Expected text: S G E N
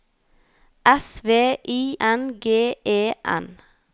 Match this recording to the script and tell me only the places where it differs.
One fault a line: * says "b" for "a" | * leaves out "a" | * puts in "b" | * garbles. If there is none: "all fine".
* puts in "V I N"